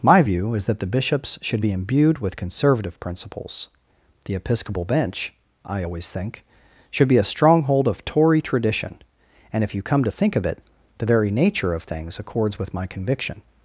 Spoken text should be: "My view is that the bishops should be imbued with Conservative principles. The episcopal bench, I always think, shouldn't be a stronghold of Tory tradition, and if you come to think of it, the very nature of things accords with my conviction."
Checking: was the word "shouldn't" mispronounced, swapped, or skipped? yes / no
yes